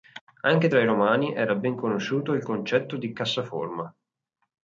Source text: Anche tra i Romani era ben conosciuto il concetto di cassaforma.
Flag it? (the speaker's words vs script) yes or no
no